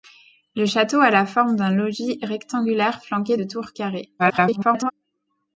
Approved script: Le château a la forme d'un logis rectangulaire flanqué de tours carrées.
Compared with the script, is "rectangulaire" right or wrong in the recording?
right